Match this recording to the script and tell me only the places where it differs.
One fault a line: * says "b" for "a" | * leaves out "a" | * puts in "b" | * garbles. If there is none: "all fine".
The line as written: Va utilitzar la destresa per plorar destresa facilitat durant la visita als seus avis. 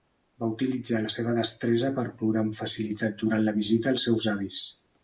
* puts in "seva"
* says "amb" for "destresa"